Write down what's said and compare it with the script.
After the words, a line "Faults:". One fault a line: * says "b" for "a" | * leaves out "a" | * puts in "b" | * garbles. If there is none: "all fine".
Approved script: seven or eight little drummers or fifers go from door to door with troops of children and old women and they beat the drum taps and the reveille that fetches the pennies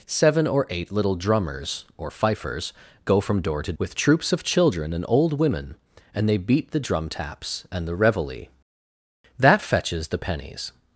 seven or eight little drummers or fifers go from door to with troops of children and old women and they beat the drum taps and the reveille that fetches the pennies
Faults:
* leaves out "door"